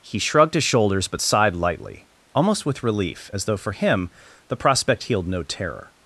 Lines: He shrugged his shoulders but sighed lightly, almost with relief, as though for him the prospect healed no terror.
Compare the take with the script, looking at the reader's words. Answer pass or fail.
pass